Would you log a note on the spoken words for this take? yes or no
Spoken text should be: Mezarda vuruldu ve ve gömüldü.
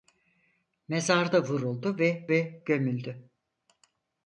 no